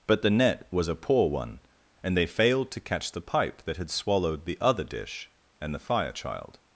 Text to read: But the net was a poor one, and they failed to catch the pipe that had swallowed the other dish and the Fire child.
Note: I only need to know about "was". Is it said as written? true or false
true